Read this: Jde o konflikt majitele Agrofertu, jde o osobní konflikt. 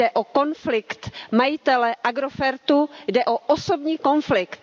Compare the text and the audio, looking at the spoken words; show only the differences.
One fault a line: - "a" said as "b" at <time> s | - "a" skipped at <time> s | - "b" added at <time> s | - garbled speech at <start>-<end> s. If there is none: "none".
none